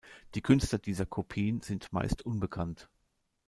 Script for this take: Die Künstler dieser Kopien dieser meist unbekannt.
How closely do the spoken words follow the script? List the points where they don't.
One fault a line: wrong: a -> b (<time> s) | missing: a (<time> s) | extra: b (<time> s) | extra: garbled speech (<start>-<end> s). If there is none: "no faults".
wrong: dieser -> sind (1.6 s)